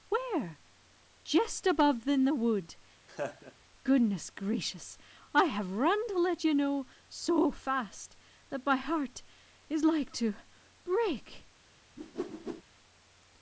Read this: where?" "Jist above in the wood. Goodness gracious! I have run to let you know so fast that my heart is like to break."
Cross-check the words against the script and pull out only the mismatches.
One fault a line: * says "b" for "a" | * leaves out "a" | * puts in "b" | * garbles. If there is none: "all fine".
all fine